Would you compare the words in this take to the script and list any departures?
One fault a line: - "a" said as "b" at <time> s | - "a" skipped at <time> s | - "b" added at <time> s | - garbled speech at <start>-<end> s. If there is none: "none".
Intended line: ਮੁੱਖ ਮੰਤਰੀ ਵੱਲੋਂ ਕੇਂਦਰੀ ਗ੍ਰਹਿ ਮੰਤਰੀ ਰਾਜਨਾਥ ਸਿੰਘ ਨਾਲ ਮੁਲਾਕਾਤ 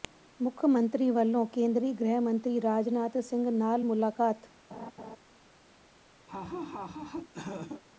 none